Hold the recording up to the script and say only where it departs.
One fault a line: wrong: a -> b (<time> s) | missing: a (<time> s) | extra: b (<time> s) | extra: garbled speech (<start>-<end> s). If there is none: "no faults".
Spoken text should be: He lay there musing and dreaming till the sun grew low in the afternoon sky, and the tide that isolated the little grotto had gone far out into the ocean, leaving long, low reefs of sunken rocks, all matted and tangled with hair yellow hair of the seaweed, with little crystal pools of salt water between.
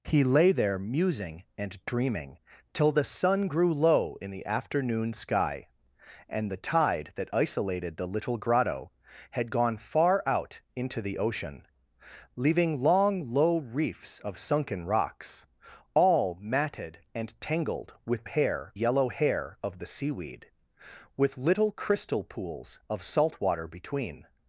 no faults